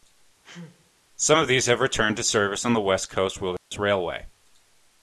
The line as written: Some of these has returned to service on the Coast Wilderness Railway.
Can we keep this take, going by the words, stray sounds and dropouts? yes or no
no